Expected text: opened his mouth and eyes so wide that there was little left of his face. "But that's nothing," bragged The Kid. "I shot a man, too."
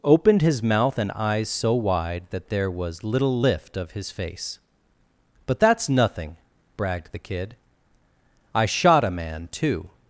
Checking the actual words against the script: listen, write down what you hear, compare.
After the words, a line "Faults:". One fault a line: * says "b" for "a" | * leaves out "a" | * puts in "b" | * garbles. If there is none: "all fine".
opened his mouth and eyes so wide that there was little lift of his face. "But that's nothing," bragged The Kid. "I shot a man, too."
Faults:
* says "lift" for "left"